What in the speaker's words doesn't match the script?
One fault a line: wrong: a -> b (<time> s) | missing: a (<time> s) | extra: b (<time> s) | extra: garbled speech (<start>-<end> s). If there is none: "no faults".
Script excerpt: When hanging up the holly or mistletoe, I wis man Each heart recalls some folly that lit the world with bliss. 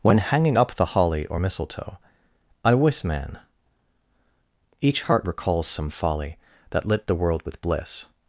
no faults